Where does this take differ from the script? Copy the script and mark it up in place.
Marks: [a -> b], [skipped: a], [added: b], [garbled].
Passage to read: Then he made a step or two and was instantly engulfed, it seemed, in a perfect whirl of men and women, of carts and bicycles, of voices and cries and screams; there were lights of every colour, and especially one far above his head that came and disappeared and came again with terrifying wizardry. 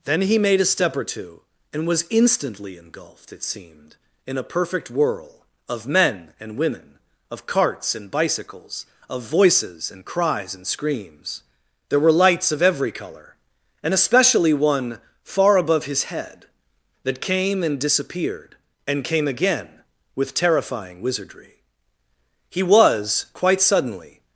Then he made a step or two and was instantly engulfed, it seemed, in a perfect whirl of men and women, of carts and bicycles, of voices and cries and screams; there were lights of every colour, and especially one far above his head that came and disappeared and came again with terrifying wizardry. [added: He was quite suddenly]